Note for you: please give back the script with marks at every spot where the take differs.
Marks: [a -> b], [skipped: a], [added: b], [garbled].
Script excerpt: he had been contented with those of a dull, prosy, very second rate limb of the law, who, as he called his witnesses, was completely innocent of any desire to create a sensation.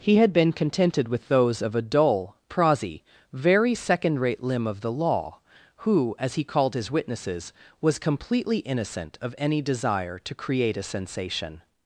he had been contented with those of a dull, prosy, very second rate limb of the law, who, as he called his witnesses, was completely innocent of any desire to create a sensation.